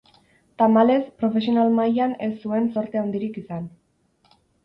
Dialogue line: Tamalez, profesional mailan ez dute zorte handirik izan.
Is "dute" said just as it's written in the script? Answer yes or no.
no